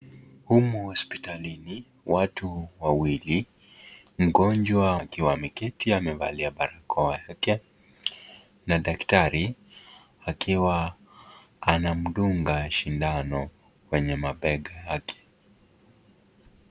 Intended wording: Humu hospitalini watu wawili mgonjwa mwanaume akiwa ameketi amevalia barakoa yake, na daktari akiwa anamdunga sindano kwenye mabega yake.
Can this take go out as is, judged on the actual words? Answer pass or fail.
fail